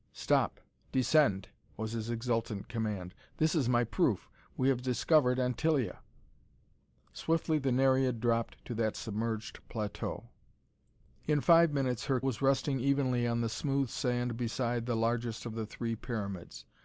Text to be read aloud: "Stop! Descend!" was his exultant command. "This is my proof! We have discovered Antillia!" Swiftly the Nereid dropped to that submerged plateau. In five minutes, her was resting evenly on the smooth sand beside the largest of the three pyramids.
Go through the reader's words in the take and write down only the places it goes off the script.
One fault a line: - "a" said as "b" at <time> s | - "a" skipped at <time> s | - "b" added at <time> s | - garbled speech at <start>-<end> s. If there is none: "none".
none